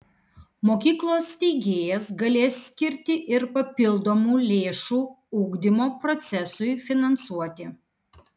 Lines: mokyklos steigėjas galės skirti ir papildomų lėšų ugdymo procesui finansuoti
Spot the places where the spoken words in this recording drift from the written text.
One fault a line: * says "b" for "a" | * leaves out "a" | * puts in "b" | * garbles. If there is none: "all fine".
all fine